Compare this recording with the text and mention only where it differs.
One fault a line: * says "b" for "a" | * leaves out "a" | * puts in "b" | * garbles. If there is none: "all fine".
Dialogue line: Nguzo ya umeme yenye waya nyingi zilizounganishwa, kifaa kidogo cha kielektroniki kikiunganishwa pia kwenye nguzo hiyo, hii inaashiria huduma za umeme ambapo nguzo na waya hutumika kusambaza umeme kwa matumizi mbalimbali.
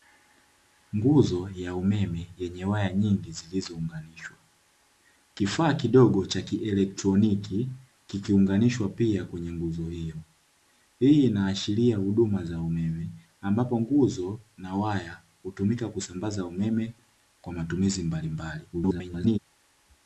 * garbles